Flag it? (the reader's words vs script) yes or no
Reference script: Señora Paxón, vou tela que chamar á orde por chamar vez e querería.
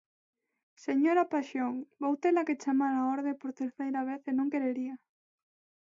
yes